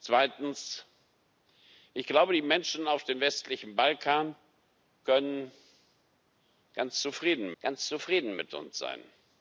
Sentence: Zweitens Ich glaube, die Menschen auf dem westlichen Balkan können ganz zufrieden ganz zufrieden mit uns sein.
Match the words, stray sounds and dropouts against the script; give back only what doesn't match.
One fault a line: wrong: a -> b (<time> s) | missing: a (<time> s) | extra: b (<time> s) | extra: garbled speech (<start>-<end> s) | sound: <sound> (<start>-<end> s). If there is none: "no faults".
no faults